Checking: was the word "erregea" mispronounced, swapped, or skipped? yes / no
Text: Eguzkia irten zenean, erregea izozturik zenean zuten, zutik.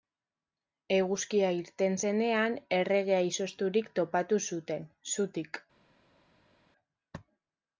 no